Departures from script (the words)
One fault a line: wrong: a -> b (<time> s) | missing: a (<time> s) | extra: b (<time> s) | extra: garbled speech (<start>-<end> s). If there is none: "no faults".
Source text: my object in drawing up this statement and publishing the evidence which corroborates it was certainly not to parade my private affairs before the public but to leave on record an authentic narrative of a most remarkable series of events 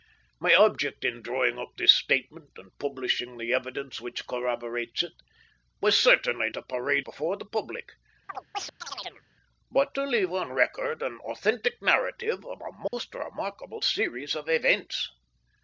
missing: not (6.5 s)
missing: my private affairs (7.0 s)